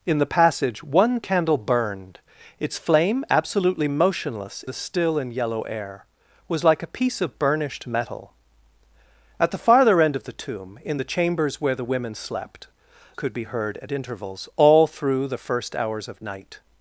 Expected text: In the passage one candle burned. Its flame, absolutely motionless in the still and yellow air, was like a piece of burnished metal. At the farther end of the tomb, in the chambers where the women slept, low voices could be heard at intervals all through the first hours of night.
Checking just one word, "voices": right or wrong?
wrong